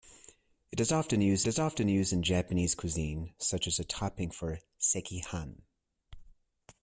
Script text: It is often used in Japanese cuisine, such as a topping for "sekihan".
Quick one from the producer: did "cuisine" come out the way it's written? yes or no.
yes